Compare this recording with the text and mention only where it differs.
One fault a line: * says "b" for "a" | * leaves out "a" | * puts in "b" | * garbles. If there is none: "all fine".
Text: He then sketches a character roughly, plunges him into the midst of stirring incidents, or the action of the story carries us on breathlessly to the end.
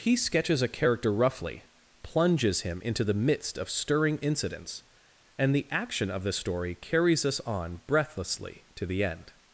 * leaves out "then"
* says "and" for "or"